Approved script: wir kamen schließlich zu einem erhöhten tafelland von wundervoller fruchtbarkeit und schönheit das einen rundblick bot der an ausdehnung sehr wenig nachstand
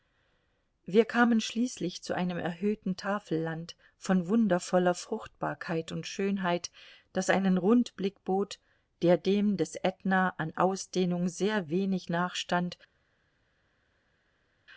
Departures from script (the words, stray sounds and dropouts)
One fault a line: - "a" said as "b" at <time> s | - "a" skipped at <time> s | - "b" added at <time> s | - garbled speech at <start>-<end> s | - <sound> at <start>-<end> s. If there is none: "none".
- "dem des ätna" added at 9.2 s